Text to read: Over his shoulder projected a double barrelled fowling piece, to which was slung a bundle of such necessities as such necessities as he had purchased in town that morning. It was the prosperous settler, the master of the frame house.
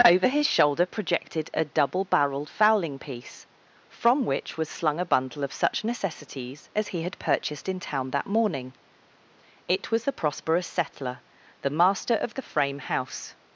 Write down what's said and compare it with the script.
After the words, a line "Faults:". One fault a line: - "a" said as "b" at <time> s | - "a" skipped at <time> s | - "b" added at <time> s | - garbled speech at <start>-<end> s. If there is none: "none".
Over his shoulder projected a double barrelled fowling piece, from which was slung a bundle of such necessities as he had purchased in town that morning. It was the prosperous settler, the master of the frame house.
Faults:
- "to" said as "from" at 3.9 s
- "such necessities as" skipped at 6.9 s